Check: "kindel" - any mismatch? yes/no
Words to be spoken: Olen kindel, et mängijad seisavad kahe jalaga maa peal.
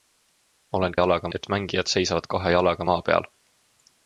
yes